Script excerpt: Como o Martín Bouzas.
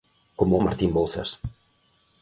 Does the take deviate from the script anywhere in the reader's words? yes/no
no